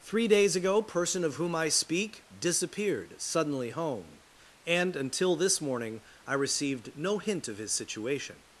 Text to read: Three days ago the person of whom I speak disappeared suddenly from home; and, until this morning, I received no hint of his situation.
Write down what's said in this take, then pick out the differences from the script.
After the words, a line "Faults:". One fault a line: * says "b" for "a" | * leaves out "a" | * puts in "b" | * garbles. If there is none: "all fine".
Three days ago person of whom I speak disappeared suddenly home; and, until this morning, I received no hint of his situation.
Faults:
* leaves out "the"
* leaves out "from"